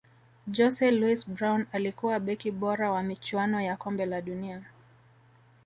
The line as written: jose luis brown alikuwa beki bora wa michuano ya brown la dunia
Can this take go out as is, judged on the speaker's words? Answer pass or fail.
fail